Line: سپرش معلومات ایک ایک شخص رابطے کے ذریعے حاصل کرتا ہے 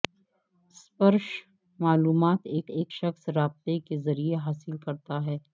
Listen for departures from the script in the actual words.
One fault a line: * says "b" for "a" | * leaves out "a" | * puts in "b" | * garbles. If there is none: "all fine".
all fine